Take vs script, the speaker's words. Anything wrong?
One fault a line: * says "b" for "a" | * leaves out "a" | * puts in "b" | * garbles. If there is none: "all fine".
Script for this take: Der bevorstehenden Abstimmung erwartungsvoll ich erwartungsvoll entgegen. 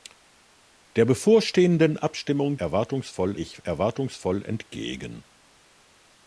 all fine